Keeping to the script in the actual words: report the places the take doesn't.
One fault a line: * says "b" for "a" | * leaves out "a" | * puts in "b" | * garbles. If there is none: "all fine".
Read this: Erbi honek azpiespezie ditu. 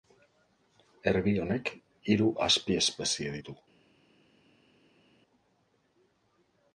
* puts in "hiru"